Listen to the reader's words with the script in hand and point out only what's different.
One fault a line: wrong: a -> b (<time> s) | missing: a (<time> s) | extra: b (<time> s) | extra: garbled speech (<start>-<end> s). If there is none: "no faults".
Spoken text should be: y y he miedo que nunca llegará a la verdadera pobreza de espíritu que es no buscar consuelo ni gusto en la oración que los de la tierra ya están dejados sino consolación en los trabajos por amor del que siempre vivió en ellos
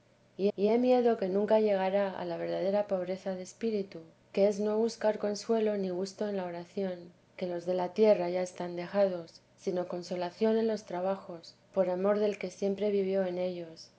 no faults